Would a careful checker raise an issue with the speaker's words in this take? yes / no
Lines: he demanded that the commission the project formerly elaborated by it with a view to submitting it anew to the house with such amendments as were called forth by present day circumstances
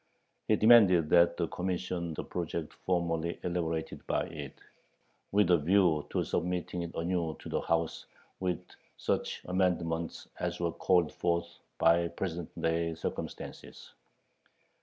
no